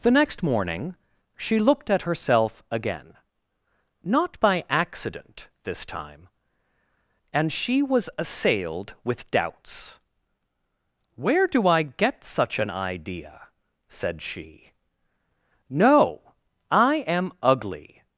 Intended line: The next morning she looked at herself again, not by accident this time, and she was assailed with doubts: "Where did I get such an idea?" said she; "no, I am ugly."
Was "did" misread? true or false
true